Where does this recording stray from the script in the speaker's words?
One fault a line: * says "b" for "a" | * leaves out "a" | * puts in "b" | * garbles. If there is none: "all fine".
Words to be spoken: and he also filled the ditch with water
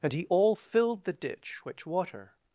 * says "all" for "also"
* says "which" for "with"